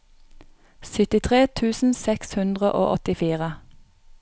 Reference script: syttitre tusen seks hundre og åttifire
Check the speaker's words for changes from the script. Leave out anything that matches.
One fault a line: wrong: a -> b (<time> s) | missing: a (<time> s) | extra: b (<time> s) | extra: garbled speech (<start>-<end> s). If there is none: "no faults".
no faults